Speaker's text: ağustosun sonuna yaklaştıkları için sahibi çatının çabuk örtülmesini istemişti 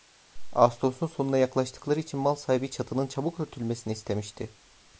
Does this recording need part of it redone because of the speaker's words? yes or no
yes